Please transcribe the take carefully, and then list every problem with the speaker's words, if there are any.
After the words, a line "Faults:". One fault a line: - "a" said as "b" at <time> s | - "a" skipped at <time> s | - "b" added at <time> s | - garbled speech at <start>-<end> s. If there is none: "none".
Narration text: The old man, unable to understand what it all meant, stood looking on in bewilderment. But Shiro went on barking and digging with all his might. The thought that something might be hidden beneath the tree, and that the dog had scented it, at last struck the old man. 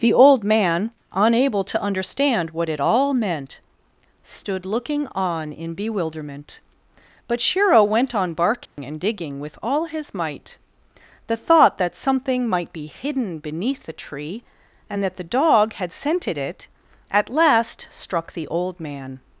The old man, unable to understand what it all meant, stood looking on in bewilderment. But Shiro went on barking and digging with all his might. The thought that something might be hidden beneath the tree, and that the dog had scented it, at last struck the old man.
Faults:
none